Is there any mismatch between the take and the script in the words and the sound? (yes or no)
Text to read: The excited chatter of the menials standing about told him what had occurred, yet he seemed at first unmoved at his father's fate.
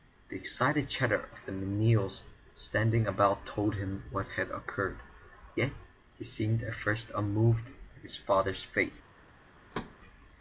yes